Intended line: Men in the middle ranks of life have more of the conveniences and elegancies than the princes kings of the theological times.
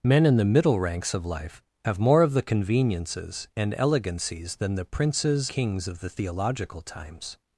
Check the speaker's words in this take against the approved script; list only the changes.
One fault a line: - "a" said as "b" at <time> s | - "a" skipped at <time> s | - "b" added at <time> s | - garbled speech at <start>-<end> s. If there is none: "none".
none